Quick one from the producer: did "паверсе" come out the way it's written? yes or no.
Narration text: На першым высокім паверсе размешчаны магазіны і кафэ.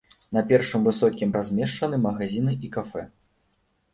no